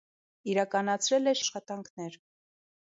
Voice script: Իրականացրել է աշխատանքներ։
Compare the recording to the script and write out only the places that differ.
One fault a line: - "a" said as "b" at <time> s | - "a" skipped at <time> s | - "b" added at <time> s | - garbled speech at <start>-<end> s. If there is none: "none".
none